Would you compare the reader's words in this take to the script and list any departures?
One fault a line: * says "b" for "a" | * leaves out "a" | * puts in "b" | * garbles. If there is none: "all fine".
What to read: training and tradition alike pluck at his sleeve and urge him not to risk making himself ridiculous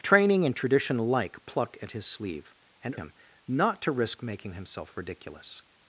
* leaves out "urge"